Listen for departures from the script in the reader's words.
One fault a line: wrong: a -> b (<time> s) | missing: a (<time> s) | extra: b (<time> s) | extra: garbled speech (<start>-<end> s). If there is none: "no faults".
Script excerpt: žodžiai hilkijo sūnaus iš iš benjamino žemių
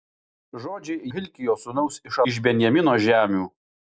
no faults